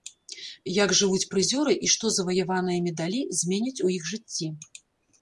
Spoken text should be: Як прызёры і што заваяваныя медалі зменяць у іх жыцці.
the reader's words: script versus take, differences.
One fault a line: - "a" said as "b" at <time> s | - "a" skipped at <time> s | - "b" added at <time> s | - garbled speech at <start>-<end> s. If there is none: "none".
- "жывуць" added at 1.0 s